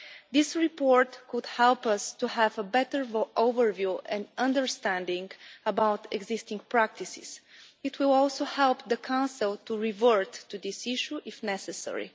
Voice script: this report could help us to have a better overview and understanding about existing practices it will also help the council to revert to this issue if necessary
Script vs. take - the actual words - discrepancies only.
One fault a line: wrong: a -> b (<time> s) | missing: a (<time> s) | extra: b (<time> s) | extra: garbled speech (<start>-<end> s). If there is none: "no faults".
no faults